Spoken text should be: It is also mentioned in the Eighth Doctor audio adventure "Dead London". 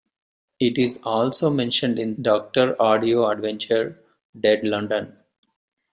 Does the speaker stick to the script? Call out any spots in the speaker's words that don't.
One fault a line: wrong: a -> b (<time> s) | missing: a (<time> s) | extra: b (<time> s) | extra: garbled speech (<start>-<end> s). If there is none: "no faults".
missing: the Eighth (2.1 s)